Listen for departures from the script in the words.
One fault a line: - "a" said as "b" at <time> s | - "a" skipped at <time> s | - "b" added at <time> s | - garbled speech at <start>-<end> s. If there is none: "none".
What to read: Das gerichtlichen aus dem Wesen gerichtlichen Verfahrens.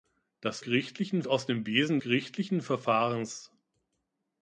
none